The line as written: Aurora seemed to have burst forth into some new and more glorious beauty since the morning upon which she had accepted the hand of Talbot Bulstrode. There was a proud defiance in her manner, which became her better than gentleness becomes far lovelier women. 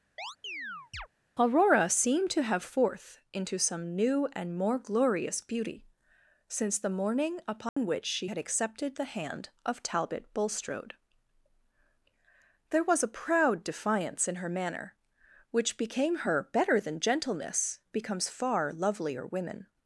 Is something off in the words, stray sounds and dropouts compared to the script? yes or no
yes